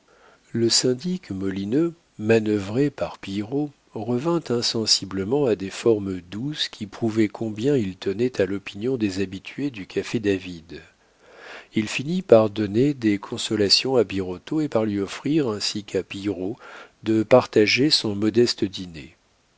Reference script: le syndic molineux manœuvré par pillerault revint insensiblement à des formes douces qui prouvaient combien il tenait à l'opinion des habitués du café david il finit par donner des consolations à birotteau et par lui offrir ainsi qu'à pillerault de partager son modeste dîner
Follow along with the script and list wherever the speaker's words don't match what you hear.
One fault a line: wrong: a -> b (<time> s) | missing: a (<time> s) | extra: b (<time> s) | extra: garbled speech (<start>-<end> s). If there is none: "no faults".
no faults